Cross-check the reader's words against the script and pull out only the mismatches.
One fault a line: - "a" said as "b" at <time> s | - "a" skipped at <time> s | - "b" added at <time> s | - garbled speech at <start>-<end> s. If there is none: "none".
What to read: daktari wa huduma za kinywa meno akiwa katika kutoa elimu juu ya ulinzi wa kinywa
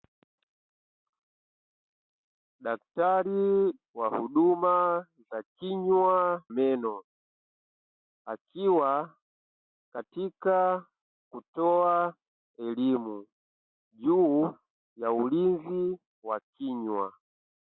none